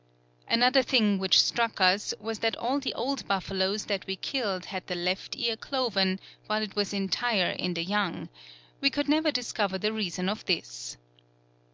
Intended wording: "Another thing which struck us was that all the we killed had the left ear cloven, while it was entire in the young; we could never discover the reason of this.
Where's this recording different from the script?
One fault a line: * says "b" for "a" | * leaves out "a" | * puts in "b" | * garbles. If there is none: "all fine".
* puts in "old buffaloes that"